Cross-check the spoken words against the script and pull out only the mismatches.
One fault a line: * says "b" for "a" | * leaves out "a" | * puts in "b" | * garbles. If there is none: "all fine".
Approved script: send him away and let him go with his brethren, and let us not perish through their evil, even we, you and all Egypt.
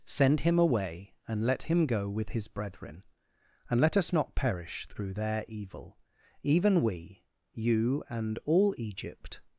all fine